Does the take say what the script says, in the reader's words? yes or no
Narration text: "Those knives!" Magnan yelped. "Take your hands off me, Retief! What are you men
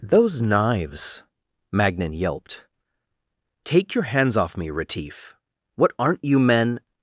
no